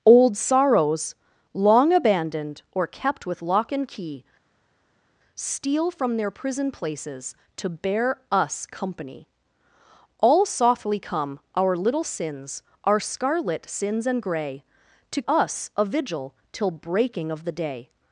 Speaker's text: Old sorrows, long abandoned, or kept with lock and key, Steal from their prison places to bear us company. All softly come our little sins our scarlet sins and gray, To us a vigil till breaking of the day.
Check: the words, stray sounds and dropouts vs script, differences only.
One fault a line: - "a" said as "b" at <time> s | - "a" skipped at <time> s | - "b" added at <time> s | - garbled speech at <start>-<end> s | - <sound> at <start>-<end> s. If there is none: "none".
none